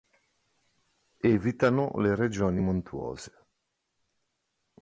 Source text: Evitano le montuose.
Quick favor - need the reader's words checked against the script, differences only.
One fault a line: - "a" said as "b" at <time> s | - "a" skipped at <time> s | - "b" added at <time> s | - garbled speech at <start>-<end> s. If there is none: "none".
- "regioni" added at 2.1 s